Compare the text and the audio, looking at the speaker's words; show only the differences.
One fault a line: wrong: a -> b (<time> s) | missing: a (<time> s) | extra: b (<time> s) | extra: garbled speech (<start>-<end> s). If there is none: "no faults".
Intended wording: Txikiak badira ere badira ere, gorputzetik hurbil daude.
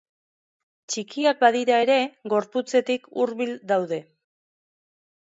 missing: badira ere (2.0 s)